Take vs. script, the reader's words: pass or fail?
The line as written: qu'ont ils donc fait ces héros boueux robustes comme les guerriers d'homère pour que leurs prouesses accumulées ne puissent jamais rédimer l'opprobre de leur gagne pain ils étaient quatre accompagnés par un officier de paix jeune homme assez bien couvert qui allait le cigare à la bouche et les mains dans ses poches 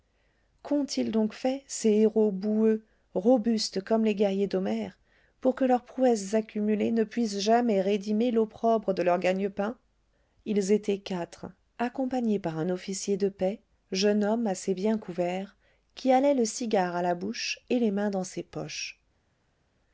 pass